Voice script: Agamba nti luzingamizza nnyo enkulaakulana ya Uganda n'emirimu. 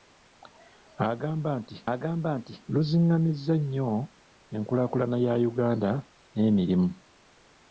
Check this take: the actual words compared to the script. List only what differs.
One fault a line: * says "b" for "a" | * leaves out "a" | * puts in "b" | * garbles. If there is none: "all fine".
* puts in "agamba nti"